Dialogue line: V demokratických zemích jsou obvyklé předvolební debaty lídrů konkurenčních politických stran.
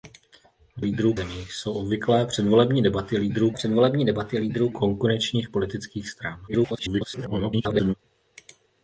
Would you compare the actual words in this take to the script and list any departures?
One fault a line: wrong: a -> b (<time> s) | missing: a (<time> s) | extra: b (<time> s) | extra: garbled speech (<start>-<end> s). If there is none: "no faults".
wrong: demokratických -> lídrů (0.8 s)
extra: předvolební debaty lídrů (3.5 s)
extra: garbled speech (6.5-7.9 s)